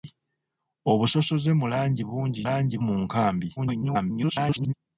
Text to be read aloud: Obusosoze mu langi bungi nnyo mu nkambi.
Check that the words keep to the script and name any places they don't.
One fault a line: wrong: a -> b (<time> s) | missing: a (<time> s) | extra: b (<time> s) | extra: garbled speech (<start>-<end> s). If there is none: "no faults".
wrong: nnyo -> langi (2.5 s)
extra: garbled speech (3.6-4.7 s)